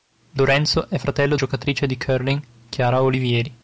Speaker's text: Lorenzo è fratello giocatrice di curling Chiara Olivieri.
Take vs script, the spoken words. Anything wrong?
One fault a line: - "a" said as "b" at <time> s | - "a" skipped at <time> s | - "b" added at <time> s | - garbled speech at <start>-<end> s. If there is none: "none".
none